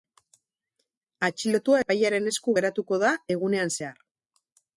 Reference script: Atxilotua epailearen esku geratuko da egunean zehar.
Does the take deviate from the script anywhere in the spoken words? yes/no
no